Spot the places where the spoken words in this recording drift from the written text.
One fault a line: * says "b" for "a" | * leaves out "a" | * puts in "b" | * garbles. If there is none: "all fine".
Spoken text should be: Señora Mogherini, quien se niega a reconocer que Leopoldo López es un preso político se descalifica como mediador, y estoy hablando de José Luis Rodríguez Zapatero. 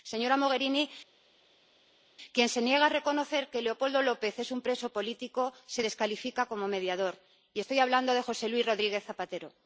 all fine